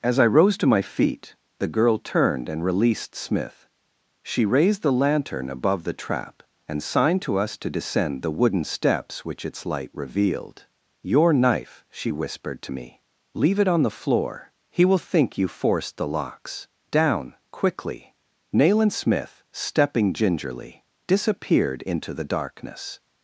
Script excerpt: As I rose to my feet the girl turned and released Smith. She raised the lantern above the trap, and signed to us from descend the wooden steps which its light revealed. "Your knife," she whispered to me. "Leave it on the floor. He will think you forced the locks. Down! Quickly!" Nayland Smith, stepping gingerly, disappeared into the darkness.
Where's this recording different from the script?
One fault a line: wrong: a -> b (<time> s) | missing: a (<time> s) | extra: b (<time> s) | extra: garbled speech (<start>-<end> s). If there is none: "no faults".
wrong: from -> to (7.6 s)